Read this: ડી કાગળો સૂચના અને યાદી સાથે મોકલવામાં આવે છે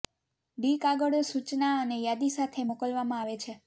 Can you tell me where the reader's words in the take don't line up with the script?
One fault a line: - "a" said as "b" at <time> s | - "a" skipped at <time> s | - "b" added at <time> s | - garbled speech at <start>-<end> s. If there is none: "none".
none